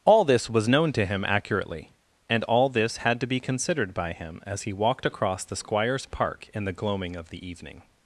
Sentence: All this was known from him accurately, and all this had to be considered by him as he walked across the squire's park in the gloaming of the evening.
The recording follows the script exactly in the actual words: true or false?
false